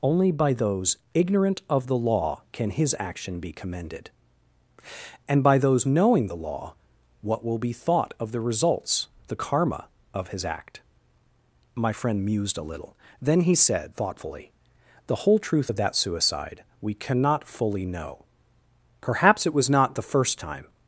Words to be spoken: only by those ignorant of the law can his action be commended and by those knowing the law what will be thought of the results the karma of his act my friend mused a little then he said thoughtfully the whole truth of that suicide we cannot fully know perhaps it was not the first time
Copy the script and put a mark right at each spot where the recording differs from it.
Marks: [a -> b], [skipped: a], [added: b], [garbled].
only by those ignorant of the law can his action be commended and by those knowing the law what will be thought of the results the karma of his act my friend mused a little then he said thoughtfully the whole truth of that suicide we cannot fully know perhaps it was not the first time